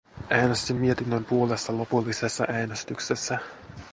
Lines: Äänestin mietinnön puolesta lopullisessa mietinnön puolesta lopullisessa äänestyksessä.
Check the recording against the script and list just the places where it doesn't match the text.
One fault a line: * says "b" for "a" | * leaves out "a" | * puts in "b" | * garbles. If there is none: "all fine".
* leaves out "mietinnön puolesta lopullisessa"